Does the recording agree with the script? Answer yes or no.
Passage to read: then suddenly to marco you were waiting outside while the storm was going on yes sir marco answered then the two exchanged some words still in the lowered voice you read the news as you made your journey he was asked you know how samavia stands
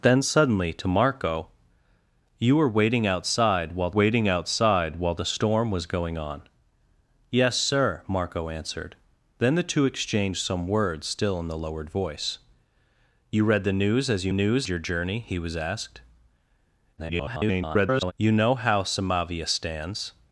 no